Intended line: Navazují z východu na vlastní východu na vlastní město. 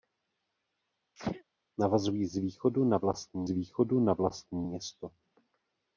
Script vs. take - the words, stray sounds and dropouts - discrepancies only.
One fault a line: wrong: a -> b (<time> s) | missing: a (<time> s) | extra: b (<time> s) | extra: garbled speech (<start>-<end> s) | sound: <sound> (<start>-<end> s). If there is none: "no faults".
sound: sneeze (1.2-1.4 s)